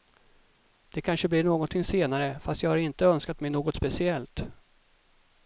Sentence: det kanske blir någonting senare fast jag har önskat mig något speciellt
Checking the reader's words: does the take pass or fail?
fail